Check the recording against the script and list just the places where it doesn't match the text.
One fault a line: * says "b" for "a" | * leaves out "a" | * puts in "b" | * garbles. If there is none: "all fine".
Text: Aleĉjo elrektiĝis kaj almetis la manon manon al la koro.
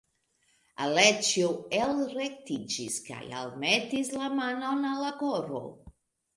* leaves out "manon"